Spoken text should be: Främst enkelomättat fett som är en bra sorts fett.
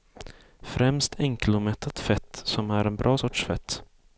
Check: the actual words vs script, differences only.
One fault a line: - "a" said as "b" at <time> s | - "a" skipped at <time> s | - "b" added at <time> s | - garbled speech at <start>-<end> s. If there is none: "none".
none